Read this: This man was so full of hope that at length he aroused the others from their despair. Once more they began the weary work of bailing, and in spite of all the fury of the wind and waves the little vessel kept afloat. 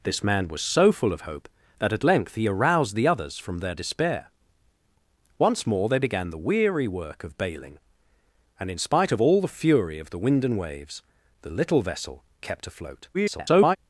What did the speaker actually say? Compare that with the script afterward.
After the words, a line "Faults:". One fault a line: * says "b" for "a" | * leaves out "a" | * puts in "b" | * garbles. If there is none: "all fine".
This man was so full of hope that at length he aroused the others from their despair. Once more they began the weary work of bailing, and in spite of all the fury of the wind and waves the little vessel kept afloat. [garbled]
Faults:
* garbles